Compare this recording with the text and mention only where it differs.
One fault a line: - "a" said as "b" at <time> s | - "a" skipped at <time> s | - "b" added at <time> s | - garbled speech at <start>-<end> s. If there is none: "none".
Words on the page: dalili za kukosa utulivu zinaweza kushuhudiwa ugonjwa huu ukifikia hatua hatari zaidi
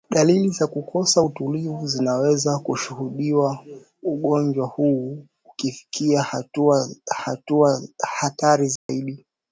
- "hatua" added at 7.2 s